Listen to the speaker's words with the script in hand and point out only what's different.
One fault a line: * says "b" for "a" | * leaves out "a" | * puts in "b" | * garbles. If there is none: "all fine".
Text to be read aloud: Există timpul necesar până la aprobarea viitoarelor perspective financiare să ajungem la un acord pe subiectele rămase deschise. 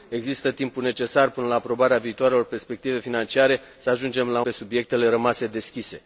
* leaves out "un acord"